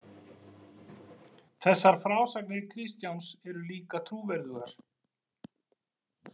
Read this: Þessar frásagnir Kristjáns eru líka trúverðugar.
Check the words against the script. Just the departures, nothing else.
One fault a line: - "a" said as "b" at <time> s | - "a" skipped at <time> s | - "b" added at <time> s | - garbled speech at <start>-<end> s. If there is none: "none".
none